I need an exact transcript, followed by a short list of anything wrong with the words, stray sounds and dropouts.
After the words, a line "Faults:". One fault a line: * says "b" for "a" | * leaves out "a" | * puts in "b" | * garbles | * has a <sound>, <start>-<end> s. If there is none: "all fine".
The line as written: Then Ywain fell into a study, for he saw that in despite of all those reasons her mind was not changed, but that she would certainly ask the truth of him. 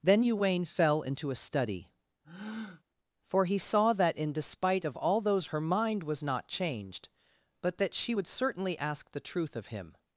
Then Ywain fell into a study, for he saw that in despite of all those her mind was not changed, but that she would certainly ask the truth of him.
Faults:
* has a breath, 2.2-2.8 s
* leaves out "reasons"